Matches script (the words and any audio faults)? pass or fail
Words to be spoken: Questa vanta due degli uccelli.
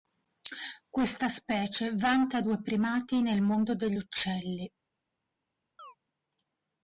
fail